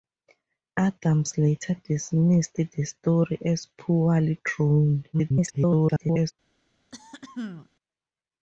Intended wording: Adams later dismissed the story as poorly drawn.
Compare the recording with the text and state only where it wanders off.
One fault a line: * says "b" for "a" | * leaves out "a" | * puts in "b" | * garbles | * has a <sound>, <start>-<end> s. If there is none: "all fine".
* garbles
* has a throat clearing, 6.9-7.7 s